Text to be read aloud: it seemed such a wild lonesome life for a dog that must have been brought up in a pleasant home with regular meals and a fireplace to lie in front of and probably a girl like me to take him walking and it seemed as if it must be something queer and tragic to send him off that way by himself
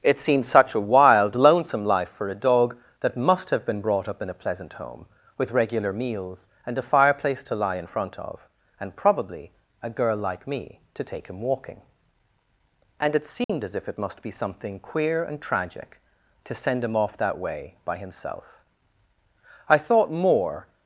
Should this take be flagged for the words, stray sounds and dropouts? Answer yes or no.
yes